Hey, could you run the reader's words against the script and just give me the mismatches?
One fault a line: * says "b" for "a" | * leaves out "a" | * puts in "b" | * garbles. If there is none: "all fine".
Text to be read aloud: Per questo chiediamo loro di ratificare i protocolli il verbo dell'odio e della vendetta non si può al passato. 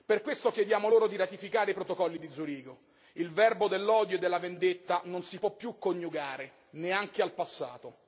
* puts in "di Zurigo"
* puts in "più coniugare neanche"